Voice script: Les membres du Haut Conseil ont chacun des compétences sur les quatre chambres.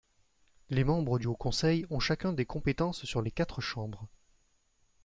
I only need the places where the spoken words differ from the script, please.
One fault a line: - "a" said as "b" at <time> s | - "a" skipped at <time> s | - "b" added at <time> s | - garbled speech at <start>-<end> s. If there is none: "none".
none